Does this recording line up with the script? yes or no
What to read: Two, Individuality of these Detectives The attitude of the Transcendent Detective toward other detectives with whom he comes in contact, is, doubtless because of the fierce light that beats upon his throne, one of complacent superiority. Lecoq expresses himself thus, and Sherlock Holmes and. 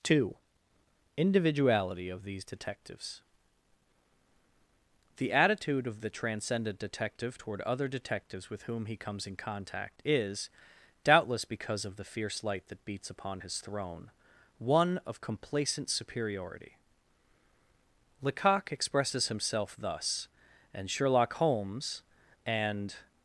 yes